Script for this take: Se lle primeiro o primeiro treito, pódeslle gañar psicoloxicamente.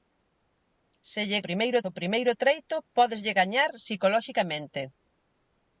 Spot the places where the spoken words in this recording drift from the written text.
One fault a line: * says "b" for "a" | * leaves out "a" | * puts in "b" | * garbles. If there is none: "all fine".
all fine